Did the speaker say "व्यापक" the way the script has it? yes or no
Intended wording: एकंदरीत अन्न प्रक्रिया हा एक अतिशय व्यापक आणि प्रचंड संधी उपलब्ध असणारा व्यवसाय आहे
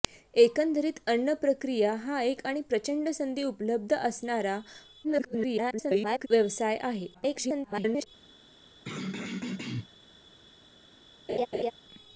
no